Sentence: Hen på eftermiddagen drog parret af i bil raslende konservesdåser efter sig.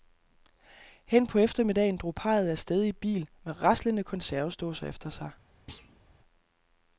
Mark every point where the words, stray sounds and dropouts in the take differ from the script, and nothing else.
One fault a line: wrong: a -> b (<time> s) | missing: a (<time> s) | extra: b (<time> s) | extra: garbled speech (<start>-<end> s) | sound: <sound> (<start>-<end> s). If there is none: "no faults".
extra: sted (2.6 s)
extra: med (3.4 s)
sound: thud (5.7-6.0 s)